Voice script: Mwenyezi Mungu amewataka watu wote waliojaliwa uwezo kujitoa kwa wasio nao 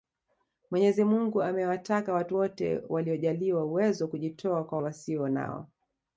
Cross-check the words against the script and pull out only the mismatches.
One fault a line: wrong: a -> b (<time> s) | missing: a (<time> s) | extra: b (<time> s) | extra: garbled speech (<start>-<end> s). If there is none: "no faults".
no faults